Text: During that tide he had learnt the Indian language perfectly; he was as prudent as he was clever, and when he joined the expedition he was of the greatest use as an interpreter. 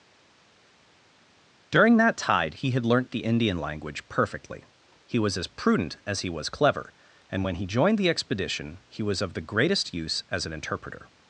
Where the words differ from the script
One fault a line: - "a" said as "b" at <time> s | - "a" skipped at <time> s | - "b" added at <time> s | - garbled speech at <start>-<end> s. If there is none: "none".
none